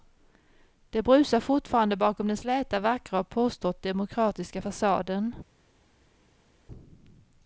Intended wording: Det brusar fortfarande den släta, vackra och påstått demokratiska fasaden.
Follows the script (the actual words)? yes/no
no